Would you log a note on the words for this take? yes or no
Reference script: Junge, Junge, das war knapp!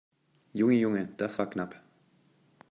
no